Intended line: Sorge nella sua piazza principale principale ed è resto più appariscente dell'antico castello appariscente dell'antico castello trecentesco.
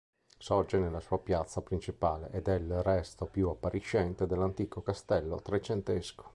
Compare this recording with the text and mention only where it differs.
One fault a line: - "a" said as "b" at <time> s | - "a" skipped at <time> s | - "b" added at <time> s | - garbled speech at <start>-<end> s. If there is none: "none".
- "principale" skipped at 2.3 s
- "il" added at 2.5 s
- "appariscente dell'antico castello" skipped at 5.4 s